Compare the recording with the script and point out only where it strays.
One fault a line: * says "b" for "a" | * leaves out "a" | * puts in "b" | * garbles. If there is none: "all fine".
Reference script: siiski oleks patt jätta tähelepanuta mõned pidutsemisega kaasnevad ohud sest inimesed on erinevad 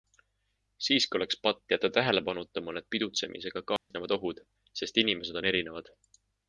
all fine